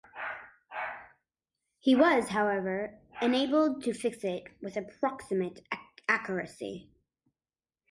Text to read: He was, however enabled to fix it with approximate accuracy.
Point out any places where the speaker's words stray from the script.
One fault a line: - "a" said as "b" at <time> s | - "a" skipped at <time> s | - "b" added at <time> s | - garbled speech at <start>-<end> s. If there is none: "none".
none